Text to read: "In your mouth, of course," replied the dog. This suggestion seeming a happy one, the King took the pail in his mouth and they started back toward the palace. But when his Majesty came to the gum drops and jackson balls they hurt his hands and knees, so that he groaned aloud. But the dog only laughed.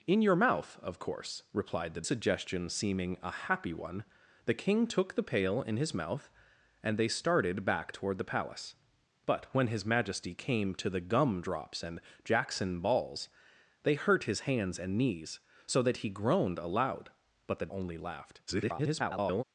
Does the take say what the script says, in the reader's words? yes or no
no